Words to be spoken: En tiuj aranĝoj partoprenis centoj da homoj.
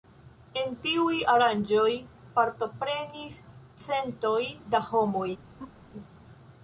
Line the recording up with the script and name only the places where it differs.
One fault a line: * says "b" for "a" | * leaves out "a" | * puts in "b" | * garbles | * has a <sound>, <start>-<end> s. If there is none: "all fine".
* has a laugh, 5.6-5.9 s